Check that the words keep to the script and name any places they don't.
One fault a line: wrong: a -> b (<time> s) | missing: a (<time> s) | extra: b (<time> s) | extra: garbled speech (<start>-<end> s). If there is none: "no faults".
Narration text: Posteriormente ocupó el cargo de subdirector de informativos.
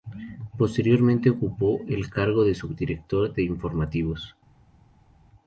no faults